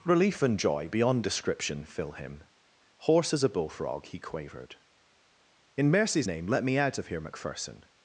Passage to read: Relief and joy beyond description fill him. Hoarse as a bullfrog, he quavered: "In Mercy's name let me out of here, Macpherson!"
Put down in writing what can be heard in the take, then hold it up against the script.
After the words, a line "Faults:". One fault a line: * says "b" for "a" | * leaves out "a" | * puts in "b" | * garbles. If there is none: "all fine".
Relief and joy beyond description fill him. Hoarse as a bullfrog, he quavered: "In Mercy's name let me out of here, Macpherson!"
Faults:
all fine